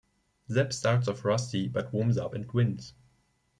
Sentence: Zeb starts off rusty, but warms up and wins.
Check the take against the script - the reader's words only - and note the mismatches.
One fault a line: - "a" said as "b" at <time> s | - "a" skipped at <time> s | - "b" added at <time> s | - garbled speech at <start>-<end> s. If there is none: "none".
none